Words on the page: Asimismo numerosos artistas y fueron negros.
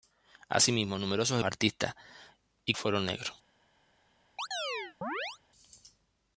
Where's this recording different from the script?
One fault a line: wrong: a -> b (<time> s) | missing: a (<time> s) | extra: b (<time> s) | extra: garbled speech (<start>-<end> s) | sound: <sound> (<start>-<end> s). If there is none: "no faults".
sound: chirp (4.4-5.4 s)